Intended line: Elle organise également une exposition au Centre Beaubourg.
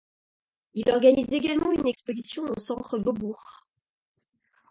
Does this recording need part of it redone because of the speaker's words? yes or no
yes